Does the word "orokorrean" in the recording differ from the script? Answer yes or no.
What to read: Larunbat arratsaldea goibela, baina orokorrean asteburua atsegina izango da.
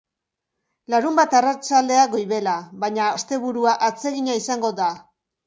yes